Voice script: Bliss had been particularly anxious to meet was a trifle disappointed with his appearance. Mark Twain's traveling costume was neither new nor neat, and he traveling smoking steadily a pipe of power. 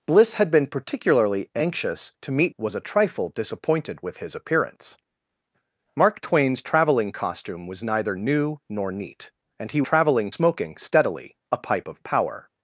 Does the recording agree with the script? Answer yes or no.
yes